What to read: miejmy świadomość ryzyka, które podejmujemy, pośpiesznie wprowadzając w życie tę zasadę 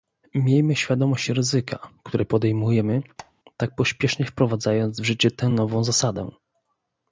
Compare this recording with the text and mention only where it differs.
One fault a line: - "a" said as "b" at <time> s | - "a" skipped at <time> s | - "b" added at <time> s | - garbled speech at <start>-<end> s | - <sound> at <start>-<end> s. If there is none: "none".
- squeak at 3.2-3.3 s
- "tak" added at 3.6 s
- "nową" added at 5.5 s